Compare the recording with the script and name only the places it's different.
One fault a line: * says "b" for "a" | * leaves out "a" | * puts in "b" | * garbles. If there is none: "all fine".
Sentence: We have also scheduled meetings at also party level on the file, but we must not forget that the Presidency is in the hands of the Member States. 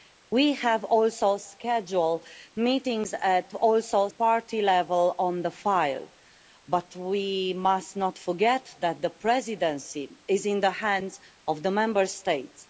all fine